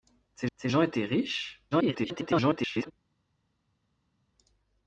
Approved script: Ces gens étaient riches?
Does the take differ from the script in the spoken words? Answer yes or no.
yes